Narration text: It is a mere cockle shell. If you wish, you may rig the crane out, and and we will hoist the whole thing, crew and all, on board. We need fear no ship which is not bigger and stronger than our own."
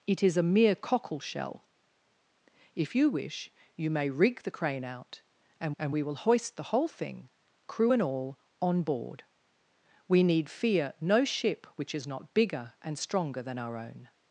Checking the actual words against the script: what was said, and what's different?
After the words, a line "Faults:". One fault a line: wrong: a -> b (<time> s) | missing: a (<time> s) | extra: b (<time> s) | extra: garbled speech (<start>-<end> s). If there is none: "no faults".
It is a mere cockle shell. If you wish, you may rig the crane out, and and we will hoist the whole thing, crew and all, on board. We need fear no ship which is not bigger and stronger than our own."
Faults:
no faults